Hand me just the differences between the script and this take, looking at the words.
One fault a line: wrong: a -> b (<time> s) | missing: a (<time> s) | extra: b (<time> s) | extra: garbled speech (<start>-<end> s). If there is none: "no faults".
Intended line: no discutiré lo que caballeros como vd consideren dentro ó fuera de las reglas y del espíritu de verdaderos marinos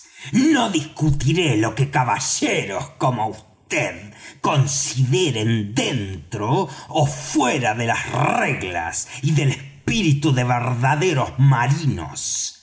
no faults